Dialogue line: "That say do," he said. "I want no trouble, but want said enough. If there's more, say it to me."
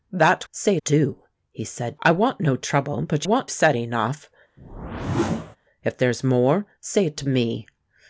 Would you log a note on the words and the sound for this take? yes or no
yes